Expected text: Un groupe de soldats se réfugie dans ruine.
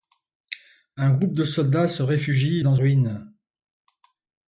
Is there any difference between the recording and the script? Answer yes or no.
no